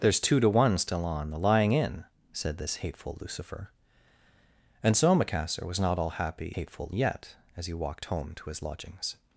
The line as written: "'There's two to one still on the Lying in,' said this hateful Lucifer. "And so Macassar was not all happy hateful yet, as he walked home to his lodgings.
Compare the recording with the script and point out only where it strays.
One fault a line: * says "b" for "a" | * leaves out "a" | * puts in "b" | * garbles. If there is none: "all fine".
all fine